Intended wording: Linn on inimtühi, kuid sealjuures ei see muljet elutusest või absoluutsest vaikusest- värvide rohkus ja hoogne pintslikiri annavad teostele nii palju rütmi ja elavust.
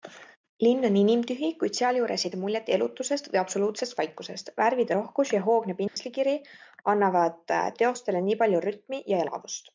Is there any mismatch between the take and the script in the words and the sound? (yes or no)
yes